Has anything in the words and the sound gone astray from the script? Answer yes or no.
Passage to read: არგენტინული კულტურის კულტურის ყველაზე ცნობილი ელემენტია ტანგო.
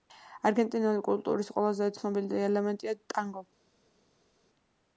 yes